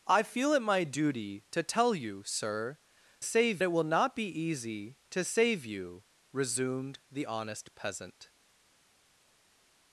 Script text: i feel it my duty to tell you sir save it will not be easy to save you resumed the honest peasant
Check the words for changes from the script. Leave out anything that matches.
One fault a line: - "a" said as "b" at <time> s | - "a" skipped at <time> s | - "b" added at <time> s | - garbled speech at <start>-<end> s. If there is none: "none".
none